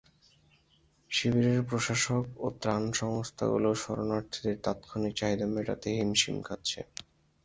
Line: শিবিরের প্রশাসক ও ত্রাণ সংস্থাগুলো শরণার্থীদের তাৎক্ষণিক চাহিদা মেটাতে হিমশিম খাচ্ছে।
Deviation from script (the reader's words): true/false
false